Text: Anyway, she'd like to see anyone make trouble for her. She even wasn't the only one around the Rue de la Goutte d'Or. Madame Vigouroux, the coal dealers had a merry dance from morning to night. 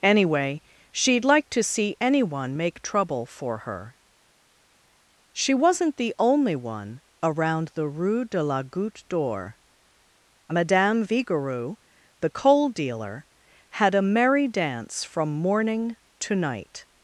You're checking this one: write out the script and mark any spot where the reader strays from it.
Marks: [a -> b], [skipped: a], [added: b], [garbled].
Anyway, she'd like to see anyone make trouble for her. She [skipped: even] wasn't the only one around the Rue de la Goutte d'Or. Madame Vigouroux, the coal [dealers -> dealer] had a merry dance from morning to night.